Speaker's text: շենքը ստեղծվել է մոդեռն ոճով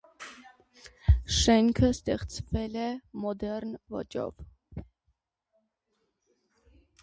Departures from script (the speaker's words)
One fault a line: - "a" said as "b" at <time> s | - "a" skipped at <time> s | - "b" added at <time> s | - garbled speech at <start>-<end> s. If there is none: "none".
none